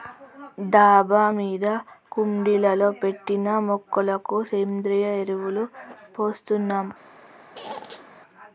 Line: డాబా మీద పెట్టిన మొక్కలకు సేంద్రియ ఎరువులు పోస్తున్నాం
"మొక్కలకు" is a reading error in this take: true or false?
false